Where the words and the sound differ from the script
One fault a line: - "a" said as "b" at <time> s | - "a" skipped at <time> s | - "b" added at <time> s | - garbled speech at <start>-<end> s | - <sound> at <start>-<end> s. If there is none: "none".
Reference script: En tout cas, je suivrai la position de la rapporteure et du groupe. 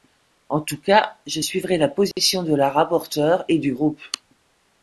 - dropout at 2.1-2.2 s